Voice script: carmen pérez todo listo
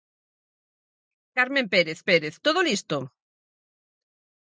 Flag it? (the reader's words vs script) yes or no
yes